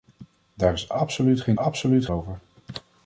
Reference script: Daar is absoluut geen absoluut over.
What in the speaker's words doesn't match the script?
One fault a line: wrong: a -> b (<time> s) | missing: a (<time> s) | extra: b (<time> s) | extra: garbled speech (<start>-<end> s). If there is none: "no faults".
no faults